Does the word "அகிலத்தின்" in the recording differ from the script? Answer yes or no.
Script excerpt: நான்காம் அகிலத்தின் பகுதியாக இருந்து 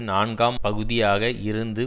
yes